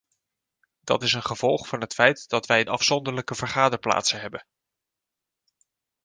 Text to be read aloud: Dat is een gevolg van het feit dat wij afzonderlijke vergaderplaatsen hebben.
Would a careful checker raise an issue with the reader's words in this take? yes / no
no